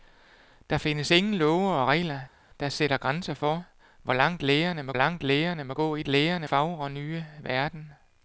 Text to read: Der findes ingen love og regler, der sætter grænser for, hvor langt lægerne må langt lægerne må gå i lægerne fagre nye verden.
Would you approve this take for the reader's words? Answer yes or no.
yes